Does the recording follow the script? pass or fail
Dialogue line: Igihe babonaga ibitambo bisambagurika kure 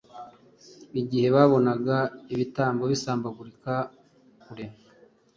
pass